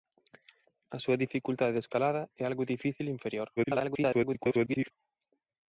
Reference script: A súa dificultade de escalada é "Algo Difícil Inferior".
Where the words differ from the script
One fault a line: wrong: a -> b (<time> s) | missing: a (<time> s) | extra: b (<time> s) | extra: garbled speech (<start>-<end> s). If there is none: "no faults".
extra: garbled speech (3.6-4.9 s)